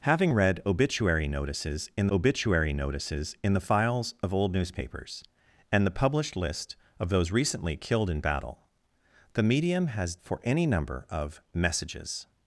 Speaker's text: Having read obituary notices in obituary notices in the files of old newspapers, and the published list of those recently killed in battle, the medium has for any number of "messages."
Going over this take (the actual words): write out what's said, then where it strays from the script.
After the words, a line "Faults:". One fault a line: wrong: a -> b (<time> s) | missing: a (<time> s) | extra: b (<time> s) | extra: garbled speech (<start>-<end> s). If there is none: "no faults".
Having read obituary notices in obituary notices in the files of old newspapers, and the published list of those recently killed in battle, the medium has for any number of "messages."
Faults:
no faults